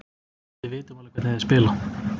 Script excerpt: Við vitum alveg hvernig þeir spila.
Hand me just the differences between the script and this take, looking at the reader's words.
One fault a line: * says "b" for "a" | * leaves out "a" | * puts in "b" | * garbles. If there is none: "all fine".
all fine